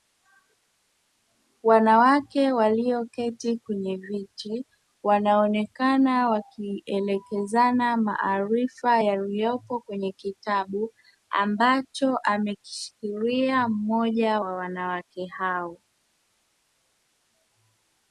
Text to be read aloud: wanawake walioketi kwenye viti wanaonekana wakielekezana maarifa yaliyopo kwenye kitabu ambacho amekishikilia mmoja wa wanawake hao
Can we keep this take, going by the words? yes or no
yes